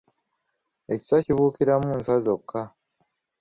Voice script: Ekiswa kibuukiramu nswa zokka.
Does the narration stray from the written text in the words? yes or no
no